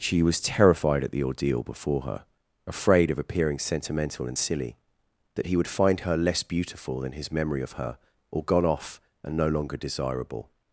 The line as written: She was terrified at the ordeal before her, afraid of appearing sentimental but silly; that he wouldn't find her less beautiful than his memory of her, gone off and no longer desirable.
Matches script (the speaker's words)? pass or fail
fail